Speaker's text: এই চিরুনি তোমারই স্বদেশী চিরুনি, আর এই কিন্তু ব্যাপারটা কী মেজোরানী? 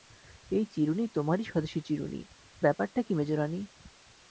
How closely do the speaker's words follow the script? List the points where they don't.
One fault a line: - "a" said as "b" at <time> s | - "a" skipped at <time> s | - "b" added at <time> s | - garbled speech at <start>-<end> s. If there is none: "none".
- "আর এই কিন্তু" skipped at 2.2 s